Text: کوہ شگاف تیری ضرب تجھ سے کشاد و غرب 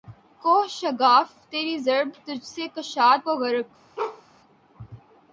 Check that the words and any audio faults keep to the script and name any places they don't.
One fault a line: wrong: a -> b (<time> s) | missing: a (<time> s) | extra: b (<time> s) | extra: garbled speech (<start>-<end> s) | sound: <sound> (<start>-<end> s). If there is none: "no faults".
sound: bark (4.0-4.2 s)